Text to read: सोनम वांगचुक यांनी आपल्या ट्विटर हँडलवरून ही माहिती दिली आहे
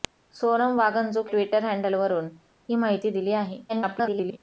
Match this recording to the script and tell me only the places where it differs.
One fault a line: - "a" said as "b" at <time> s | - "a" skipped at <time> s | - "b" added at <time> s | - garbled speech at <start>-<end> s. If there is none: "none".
- "यांनी आपल्या" skipped at 1.3 s
- garbled speech at 3.7-4.4 s